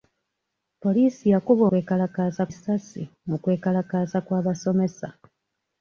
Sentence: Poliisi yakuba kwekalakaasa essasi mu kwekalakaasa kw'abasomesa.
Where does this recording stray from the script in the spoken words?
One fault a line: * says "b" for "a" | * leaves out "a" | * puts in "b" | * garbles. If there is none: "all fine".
all fine